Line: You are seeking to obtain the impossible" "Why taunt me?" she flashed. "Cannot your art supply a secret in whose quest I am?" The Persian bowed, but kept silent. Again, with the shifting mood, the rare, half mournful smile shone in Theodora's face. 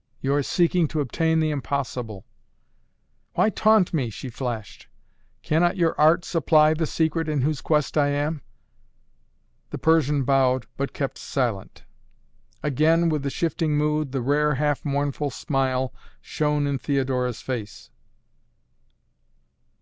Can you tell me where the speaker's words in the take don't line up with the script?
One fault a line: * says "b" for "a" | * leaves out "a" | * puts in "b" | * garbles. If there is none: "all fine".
* says "the" for "a"